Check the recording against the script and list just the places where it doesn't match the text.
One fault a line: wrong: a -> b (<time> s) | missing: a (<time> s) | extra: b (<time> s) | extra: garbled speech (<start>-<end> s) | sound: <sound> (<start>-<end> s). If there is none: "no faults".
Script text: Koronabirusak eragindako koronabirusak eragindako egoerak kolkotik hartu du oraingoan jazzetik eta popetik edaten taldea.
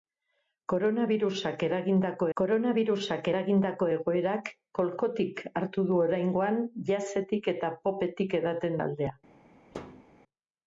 sound: thud (9.7-10.1 s)